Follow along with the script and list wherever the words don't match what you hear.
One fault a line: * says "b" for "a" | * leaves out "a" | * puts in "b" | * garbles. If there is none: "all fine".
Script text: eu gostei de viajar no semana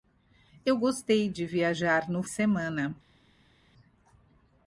all fine